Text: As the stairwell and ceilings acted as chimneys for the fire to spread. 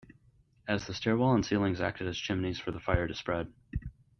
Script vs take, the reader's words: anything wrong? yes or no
no